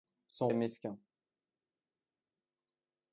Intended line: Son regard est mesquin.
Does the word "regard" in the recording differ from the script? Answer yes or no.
yes